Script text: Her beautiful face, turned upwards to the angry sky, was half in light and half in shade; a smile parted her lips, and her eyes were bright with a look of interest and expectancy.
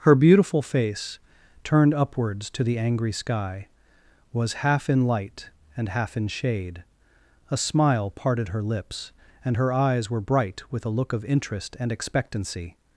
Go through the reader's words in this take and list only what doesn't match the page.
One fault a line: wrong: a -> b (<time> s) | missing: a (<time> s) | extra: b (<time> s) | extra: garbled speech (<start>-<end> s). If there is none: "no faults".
no faults